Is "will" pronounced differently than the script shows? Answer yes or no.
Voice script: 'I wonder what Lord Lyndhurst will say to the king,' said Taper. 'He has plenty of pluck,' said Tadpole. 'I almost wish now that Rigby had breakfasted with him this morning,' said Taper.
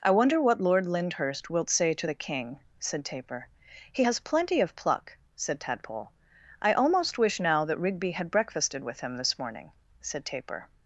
yes